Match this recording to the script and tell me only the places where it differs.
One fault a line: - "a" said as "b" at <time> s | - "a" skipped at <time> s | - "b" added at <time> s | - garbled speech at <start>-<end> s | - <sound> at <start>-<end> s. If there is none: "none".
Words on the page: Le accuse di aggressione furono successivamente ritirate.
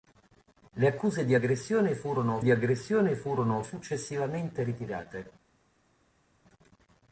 - "di aggressione furono" added at 2.4 s